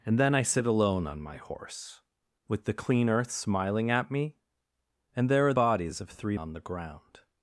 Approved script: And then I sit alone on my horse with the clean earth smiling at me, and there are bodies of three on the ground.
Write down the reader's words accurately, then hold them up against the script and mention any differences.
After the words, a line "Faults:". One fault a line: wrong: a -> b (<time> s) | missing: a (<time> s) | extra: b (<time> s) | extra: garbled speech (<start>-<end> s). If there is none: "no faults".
And then I sit alone on my horse with the clean earth smiling at me, and there are bodies of three on the ground.
Faults:
no faults